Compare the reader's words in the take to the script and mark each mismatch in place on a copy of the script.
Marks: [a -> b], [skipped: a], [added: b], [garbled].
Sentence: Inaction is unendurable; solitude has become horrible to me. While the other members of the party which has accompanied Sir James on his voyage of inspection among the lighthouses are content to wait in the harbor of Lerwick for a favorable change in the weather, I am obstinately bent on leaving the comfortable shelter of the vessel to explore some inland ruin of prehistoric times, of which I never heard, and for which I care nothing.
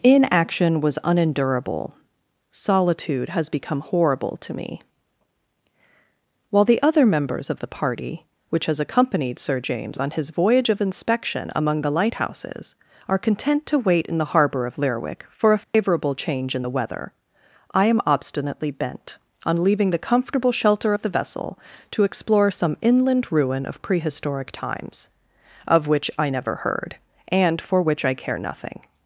Inaction [is -> was] unendurable; solitude has become horrible to me. While the other members of the party which has accompanied Sir James on his voyage of inspection among the lighthouses are content to wait in the harbor of Lerwick for a favorable change in the weather, I am obstinately bent on leaving the comfortable shelter of the vessel to explore some inland ruin of prehistoric times, of which I never heard, and for which I care nothing.